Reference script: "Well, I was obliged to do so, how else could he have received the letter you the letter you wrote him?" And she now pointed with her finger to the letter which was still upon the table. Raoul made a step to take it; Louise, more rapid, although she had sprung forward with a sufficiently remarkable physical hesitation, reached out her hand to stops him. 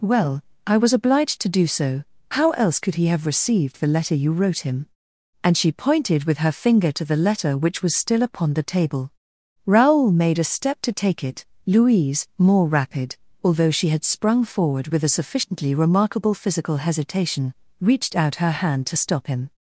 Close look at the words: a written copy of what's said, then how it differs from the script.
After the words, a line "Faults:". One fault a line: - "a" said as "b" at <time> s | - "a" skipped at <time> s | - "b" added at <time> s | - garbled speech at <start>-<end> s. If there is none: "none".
"Well, I was obliged to do so, how else could he have received the letter you wrote him?" And she pointed with her finger to the letter which was still upon the table. Raoul made a step to take it; Louise, more rapid, although she had sprung forward with a sufficiently remarkable physical hesitation, reached out her hand to stop him.
Faults:
- "the letter you" skipped at 4.3 s
- "now" skipped at 5.7 s
- "stops" said as "stop" at 19.0 s